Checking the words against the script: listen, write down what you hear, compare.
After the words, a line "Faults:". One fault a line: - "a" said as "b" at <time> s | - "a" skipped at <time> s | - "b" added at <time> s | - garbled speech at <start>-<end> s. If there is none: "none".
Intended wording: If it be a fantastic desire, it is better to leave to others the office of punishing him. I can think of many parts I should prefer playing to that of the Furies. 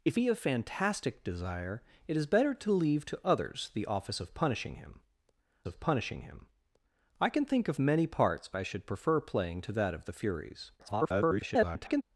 If be a fantastic desire, it is better to leave to others the office of punishing him of punishing him. I can think of many parts I should prefer playing to that of the Furies. [garbled]
Faults:
- "it" skipped at 0.2 s
- "of punishing him" added at 5.6 s
- garbled speech at 10.8-12.0 s